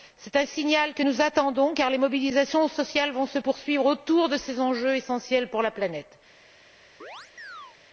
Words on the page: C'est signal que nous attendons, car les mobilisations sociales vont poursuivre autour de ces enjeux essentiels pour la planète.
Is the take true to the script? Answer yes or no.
no